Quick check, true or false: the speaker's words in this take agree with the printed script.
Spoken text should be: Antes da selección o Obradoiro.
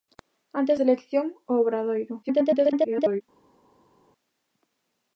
false